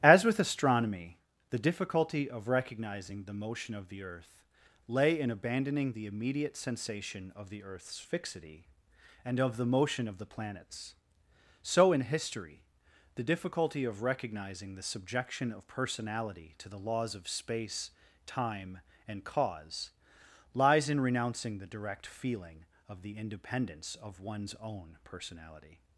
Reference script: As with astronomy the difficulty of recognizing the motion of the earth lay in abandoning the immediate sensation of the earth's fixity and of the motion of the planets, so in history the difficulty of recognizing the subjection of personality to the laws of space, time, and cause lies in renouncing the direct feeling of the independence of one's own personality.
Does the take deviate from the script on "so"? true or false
false